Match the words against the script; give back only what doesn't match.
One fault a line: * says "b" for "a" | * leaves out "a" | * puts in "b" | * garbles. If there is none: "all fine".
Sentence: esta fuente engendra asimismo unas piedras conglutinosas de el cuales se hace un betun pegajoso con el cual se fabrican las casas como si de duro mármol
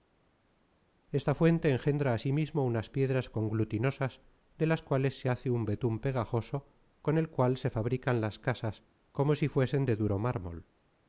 * says "las" for "el"
* puts in "fuesen"